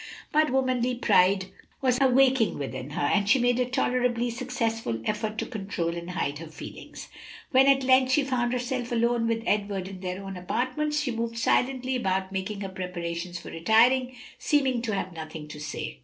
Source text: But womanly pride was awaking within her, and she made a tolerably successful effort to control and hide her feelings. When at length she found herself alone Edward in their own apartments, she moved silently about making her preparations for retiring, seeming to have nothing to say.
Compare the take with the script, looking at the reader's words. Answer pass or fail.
fail